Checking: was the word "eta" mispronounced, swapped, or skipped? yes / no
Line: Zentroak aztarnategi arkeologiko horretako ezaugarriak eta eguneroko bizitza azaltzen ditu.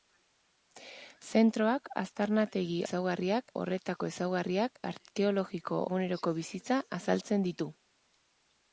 yes